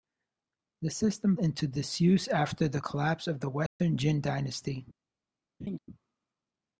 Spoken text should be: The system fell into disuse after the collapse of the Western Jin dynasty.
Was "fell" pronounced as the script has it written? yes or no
no